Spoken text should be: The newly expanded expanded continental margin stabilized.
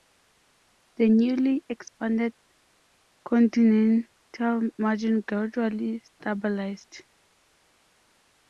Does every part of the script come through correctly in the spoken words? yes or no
no